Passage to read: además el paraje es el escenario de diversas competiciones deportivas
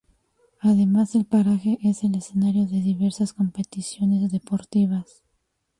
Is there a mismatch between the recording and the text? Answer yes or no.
no